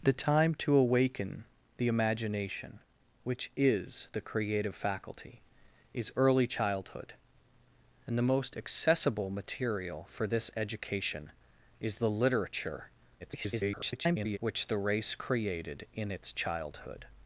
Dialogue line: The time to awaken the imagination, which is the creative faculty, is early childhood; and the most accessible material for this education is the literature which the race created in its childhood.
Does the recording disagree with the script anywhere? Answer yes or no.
yes